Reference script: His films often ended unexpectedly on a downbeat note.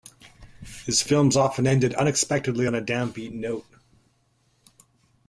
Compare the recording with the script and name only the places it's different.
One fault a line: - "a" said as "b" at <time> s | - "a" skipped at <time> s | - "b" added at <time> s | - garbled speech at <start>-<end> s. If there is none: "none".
none